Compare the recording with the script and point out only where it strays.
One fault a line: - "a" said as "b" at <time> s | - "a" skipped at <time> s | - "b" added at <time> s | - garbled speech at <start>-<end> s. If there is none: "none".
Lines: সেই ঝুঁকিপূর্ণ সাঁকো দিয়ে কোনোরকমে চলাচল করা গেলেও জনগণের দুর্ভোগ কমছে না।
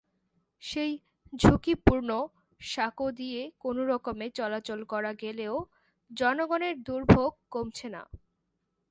none